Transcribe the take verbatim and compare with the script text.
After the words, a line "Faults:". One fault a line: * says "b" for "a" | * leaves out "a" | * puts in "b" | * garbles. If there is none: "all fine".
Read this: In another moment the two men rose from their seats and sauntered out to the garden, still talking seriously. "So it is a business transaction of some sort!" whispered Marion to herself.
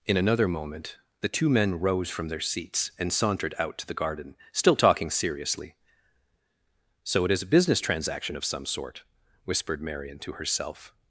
In another moment the two men rose from their seats and sauntered out to the garden, still talking seriously. "So it is a business transaction of some sort!" whispered Marion to herself.
Faults:
all fine